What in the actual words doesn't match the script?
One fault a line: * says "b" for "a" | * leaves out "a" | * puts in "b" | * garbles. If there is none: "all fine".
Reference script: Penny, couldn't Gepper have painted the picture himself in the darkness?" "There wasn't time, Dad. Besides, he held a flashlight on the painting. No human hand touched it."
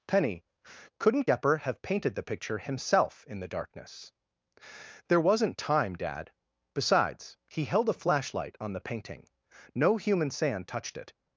* says "sand" for "hand"